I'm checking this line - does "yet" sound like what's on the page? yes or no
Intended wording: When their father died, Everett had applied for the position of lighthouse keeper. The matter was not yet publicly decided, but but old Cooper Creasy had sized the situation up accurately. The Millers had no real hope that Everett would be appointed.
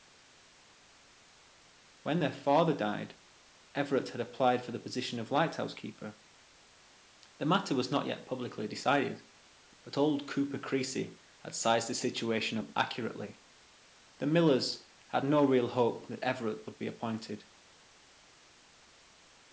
yes